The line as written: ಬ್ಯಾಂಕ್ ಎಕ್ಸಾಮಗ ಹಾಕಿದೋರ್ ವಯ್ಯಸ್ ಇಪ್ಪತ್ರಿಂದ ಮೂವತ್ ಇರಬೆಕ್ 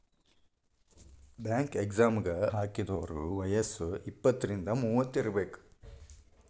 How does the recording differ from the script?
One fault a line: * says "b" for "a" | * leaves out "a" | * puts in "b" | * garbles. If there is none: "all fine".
all fine